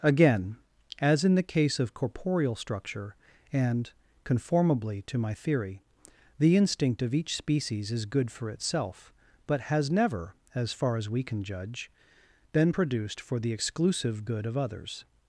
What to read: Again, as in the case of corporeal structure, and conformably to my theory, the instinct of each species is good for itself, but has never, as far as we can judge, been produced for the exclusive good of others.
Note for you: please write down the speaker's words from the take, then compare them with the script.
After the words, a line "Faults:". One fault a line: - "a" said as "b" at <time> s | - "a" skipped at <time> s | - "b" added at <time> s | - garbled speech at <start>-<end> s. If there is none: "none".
Again, as in the case of corporeal structure, and conformably to my theory, the instinct of each species is good for itself, but has never, as far as we can judge, been produced for the exclusive good of others.
Faults:
none